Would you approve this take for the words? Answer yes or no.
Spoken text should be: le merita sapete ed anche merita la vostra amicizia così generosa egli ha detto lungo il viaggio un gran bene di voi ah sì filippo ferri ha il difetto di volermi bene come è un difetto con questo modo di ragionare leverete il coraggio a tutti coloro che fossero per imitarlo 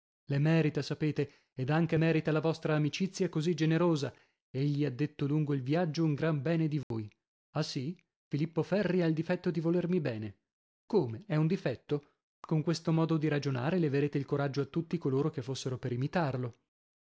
yes